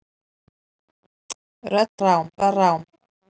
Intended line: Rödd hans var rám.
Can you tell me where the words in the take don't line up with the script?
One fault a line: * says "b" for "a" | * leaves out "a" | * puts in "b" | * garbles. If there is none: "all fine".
* says "rám" for "hans"